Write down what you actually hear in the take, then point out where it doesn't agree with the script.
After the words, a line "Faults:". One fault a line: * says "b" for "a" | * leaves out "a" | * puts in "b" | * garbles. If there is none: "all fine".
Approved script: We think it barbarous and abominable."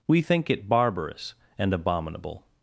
We think it barbarous and abominable."
Faults:
all fine